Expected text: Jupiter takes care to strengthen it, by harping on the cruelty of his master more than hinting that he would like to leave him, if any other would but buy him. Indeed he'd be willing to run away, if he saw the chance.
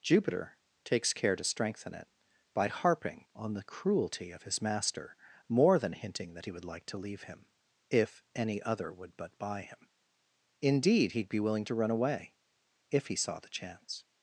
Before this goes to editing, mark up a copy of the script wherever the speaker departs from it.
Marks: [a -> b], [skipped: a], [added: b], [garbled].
Jupiter takes care to strengthen it, by harping on the cruelty of his master more than hinting that he would like to leave him, if any other would but buy him. Indeed he'd be willing to run away, if he saw the chance.